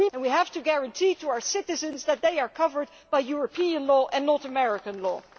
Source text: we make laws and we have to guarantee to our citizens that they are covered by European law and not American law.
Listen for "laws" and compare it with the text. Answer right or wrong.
wrong